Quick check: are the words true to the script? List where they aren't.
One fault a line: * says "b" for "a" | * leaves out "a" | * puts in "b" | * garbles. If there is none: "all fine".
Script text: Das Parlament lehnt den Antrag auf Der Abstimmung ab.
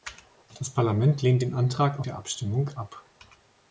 all fine